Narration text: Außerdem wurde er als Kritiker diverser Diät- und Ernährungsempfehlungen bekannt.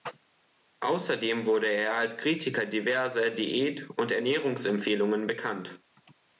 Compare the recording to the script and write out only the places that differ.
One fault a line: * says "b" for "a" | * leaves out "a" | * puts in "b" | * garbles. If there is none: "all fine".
all fine